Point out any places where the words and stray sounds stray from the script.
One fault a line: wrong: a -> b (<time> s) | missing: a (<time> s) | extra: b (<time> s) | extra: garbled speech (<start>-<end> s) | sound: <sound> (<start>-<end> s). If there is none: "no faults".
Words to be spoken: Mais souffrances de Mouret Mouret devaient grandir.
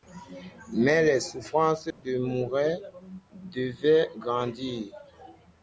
extra: les (1.0 s)
sound: dropout (1.9-2.0 s)
missing: Mouret (2.8 s)